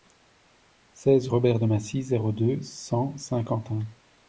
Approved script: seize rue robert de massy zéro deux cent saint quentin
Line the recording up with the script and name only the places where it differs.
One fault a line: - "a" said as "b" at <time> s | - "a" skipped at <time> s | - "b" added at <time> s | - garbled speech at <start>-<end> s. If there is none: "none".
- "rue" skipped at 1.3 s